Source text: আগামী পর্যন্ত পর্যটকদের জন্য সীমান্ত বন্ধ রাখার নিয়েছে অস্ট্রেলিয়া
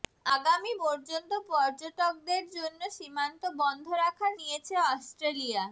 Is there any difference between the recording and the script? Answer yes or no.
no